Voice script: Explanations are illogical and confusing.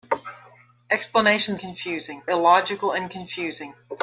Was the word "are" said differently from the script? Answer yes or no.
yes